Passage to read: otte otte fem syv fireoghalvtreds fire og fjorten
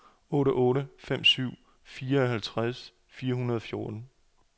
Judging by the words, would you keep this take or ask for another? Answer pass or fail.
fail